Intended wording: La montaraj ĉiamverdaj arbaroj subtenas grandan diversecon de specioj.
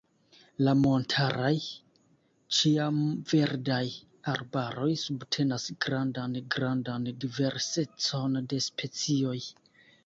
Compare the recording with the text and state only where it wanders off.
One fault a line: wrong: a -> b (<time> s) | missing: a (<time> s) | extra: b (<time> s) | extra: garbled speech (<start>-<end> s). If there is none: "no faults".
extra: grandan (6.6 s)